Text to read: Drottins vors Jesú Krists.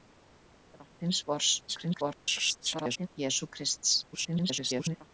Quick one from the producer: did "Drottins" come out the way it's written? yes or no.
yes